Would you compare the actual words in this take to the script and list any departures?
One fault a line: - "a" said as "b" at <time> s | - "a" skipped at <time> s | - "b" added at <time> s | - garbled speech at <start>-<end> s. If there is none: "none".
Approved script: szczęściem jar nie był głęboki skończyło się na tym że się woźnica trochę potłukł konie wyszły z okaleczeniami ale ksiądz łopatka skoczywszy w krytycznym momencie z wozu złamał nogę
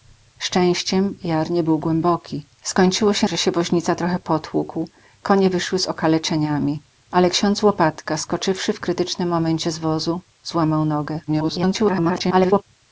- "na tym" skipped at 3.3 s
- garbled speech at 11.3-12.6 s